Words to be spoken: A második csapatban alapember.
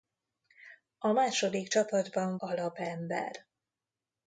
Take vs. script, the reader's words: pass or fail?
pass